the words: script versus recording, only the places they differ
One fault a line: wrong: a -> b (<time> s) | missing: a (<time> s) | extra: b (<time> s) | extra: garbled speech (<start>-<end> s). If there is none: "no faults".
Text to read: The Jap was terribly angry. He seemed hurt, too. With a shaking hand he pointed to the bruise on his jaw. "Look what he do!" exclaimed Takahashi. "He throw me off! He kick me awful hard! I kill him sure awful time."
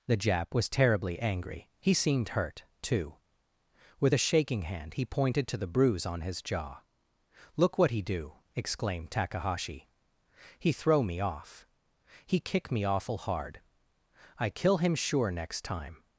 wrong: awful -> next (15.3 s)